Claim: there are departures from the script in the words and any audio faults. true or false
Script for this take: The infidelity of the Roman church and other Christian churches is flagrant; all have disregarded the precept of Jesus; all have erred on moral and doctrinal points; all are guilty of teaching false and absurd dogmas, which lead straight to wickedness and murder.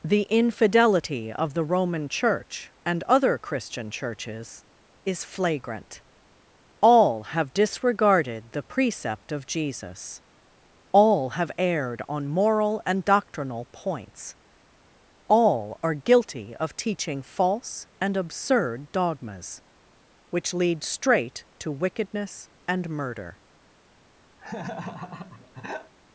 true